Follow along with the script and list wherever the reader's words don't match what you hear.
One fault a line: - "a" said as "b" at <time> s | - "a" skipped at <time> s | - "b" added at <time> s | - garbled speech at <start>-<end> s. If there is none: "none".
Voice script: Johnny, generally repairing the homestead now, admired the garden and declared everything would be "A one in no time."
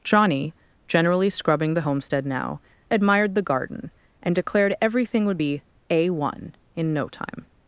- "repairing" said as "scrubbing" at 1.3 s